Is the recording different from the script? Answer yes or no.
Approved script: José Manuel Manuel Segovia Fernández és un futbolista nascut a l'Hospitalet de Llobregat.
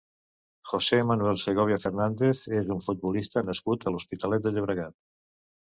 yes